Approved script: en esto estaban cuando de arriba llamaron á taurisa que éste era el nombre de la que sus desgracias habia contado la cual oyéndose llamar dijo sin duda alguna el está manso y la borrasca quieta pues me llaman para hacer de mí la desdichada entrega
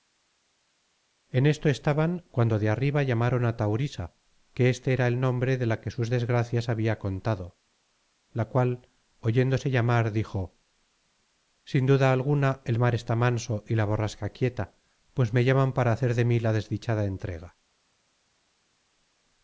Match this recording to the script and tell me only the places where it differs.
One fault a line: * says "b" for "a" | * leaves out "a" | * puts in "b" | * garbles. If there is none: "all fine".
* puts in "mar"